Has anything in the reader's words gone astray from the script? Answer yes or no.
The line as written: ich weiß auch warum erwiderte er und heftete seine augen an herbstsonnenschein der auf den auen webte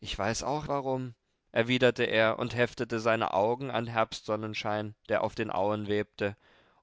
no